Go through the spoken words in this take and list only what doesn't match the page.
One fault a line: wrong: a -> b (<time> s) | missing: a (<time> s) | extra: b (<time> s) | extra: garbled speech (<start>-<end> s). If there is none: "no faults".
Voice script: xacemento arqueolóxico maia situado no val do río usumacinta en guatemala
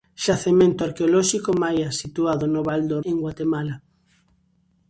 missing: río usumacinta (3.0 s)